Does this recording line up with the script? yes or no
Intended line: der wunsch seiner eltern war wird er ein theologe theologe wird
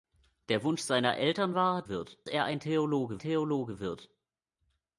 yes